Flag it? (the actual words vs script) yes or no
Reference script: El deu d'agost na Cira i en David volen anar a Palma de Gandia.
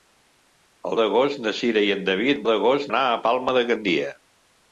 yes